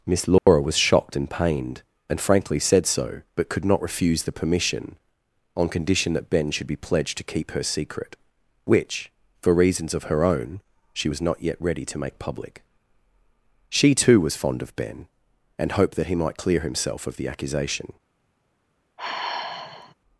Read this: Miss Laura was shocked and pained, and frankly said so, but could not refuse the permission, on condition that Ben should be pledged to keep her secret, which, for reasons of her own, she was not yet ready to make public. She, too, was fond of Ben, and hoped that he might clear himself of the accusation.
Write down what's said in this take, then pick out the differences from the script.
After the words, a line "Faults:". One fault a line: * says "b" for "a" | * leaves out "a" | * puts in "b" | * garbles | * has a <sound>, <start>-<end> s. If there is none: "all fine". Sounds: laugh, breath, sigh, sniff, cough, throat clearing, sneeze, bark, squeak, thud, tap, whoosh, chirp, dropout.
Miss Laura was shocked and pained, and frankly said so, but could not refuse the permission, on condition that Ben should be pledged to keep her secret, which, for reasons of her own, she was not yet ready to make public. She, too, was fond of Ben, and hoped that he might clear himself of the accusation.
Faults:
* has a dropout, 0.4-0.5 s
* has a sigh, 19.0-19.9 s